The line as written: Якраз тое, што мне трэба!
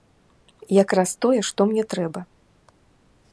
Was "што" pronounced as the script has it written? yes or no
yes